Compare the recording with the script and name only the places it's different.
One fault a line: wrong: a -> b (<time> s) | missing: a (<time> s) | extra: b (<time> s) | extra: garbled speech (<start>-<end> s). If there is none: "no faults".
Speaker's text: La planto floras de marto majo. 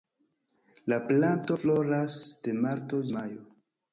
no faults